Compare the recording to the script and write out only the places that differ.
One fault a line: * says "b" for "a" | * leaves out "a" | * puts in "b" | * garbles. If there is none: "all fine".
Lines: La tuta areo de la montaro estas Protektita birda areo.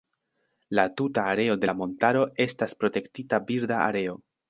all fine